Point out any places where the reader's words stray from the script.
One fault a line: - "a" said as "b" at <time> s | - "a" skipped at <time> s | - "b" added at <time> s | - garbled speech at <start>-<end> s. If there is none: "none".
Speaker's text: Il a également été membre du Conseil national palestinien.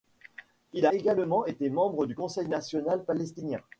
- "a" skipped at 0.9 s